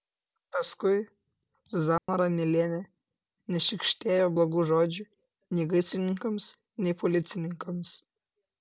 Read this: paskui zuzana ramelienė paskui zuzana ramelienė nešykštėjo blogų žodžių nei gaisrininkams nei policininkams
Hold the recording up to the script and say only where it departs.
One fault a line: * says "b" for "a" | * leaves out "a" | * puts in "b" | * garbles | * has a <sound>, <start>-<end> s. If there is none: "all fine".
* has a dropout, 2.0-2.1 s
* leaves out "paskui zuzana ramelienė"